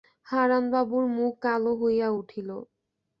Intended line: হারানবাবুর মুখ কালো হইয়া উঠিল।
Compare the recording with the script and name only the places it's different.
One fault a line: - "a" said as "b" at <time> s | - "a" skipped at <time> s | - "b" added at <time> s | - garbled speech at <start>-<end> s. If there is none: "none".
none